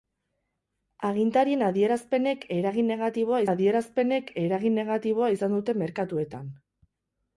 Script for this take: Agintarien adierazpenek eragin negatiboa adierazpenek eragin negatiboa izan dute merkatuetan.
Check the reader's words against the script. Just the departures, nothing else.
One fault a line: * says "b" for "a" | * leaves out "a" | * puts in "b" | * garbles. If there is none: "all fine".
all fine